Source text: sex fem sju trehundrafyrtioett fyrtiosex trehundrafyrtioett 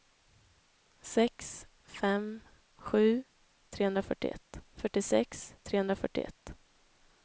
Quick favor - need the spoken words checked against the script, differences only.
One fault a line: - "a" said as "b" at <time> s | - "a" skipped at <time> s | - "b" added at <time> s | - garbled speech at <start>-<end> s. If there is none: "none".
none